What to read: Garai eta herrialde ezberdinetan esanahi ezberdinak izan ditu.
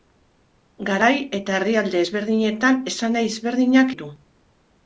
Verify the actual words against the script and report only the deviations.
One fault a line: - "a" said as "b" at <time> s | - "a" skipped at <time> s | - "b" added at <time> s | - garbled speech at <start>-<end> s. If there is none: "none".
- "izan" skipped at 3.9 s